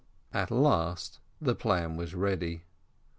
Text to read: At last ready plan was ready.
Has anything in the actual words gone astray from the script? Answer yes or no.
yes